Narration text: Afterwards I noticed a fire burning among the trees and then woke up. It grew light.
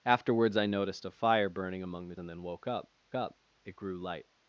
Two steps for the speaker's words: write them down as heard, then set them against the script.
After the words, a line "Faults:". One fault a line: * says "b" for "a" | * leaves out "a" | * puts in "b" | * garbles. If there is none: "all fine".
Afterwards I noticed a fire burning among the and then woke up up. It grew light.
Faults:
* leaves out "trees"
* puts in "up"